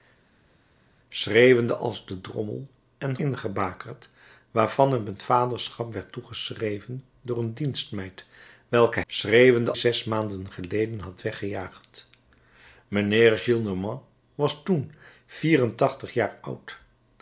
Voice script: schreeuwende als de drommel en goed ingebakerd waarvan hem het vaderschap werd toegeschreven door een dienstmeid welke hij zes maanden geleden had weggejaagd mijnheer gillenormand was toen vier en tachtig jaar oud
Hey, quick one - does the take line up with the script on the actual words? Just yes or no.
no